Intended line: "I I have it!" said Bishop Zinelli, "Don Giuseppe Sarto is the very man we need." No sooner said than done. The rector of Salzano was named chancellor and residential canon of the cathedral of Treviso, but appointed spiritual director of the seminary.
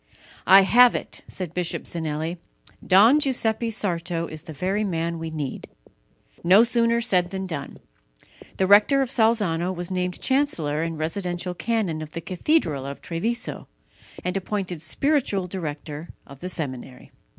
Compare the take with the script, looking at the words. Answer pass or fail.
fail